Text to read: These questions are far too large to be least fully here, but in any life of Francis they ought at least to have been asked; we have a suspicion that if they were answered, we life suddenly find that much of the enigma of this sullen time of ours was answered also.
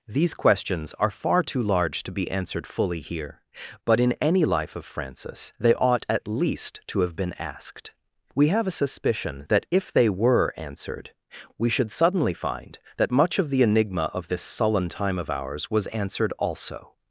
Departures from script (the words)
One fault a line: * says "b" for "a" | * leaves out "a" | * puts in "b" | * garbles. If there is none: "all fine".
* says "answered" for "least"
* says "should" for "life"